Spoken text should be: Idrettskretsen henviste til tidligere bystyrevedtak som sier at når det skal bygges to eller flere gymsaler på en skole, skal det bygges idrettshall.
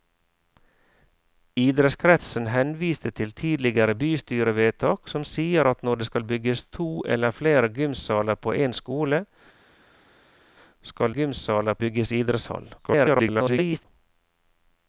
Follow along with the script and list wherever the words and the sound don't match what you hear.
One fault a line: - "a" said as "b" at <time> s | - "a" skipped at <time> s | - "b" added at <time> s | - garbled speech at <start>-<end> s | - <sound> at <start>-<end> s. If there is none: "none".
- "det" said as "gymsaler" at 11.1 s
- garbled speech at 12.8-13.9 s